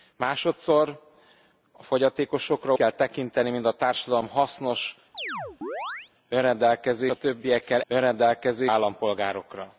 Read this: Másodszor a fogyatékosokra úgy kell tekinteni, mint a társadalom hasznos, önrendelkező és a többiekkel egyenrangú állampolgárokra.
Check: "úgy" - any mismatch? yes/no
yes